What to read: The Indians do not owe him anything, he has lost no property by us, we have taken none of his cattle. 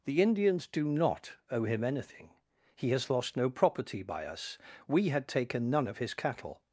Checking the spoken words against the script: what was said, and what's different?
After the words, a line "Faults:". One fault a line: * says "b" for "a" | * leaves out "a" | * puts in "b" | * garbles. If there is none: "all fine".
The Indians do not owe him anything, he has lost no property by us, we had taken none of his cattle.
Faults:
* says "had" for "have"